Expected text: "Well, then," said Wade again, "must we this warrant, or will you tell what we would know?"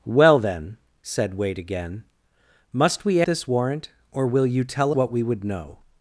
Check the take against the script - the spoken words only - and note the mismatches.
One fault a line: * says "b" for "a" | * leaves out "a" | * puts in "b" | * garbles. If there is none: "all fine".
all fine